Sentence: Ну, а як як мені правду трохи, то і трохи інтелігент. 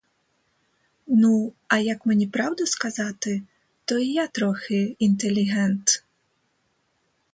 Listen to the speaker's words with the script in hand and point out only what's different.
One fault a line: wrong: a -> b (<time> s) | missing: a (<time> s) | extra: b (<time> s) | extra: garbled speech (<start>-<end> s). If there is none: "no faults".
missing: як (2.0 s)
wrong: трохи -> сказати (2.6 s)
extra: я (4.1 s)